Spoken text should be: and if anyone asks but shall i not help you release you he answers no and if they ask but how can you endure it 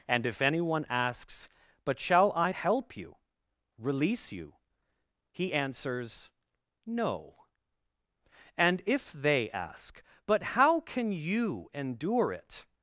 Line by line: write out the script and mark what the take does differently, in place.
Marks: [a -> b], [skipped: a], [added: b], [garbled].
and if anyone asks but shall i [skipped: not] help you release you he answers no and if they ask but how can you endure it